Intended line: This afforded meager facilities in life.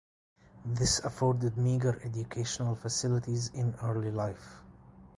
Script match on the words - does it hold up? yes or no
no